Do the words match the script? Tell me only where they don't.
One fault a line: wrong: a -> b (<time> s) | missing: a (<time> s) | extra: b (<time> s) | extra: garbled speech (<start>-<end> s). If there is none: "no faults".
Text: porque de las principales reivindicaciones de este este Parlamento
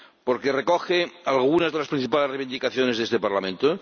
extra: recoge algunas (0.5 s)
missing: este (3.2 s)